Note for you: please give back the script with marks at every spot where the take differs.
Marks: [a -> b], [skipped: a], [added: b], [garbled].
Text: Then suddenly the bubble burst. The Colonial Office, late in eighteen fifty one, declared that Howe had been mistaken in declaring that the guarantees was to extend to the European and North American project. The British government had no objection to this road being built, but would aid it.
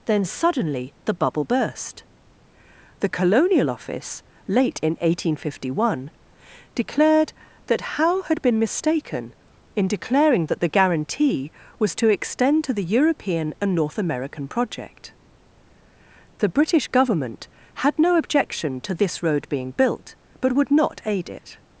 Then suddenly the bubble burst. The Colonial Office, late in eighteen fifty one, declared that Howe had been mistaken in declaring that the [guarantees -> guarantee] was to extend to the European and North American project. The British government had no objection to this road being built, but would [added: not] aid it.